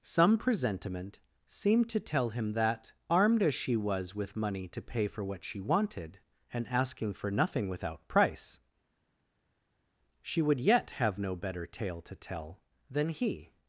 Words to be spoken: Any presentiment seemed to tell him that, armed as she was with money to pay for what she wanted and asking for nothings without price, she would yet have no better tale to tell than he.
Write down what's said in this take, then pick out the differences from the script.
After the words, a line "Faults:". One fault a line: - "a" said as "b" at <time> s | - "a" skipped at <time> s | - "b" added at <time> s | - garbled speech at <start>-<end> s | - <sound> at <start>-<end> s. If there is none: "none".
Some presentiment seemed to tell him that, armed as she was with money to pay for what she wanted and asking for nothing without price, she would yet have no better tale to tell than he.
Faults:
- "Any" said as "Some" at 0.0 s
- "nothings" said as "nothing" at 7.3 s